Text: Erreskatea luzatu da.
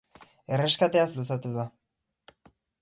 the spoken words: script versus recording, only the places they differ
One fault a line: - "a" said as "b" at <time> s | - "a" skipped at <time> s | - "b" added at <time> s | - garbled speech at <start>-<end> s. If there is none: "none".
none